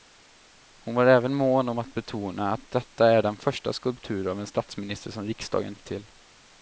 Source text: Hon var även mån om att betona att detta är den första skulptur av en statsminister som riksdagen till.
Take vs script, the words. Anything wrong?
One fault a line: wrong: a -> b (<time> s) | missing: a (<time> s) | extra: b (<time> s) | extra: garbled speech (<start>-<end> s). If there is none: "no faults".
no faults